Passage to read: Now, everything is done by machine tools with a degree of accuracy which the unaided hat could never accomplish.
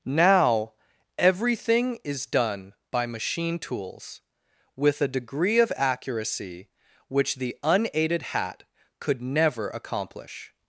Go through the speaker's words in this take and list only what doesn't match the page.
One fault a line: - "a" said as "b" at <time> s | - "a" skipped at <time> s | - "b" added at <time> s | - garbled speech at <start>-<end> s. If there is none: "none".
none